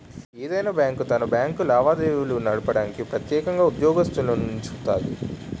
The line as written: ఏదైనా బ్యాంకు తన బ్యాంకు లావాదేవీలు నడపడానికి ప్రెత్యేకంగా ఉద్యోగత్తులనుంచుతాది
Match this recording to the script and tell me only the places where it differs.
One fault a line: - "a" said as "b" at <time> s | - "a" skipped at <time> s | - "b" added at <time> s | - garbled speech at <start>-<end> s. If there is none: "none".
none